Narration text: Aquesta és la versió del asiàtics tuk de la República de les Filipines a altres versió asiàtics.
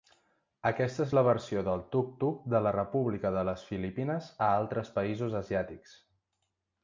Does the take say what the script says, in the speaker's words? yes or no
no